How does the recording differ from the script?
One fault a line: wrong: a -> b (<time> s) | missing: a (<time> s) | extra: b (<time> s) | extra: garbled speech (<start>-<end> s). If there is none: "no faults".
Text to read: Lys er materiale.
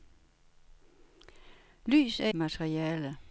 no faults